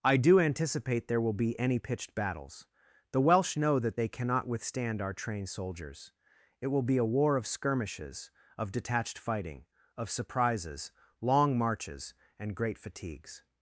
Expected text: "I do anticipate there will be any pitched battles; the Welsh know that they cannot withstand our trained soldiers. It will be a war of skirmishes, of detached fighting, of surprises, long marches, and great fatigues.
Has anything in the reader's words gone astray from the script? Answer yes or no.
no